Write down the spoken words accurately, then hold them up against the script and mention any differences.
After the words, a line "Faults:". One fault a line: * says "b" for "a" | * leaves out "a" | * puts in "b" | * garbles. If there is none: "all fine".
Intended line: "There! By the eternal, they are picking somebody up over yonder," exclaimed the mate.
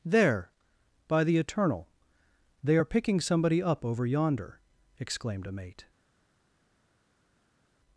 "There! By the eternal, they are picking somebody up over yonder," exclaimed a mate.
Faults:
* says "a" for "the"